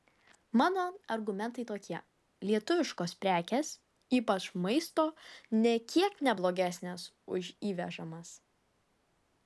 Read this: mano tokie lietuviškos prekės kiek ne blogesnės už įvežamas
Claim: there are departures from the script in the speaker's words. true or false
true